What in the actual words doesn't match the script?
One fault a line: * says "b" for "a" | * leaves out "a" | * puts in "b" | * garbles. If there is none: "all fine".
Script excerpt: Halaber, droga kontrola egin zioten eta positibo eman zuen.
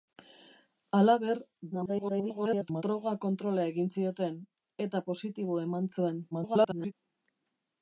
* garbles
* garbles